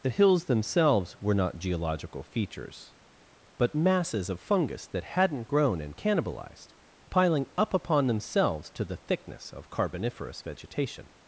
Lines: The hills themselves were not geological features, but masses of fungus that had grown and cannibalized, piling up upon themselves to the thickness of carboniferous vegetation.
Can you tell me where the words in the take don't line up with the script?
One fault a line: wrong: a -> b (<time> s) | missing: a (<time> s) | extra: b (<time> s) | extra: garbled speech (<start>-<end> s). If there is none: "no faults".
wrong: had -> hadn't (5.0 s)